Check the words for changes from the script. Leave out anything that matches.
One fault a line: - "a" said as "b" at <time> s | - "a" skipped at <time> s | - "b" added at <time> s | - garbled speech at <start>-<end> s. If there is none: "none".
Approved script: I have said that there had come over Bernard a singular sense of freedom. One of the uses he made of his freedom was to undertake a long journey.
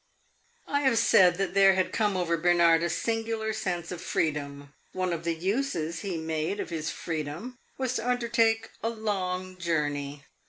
none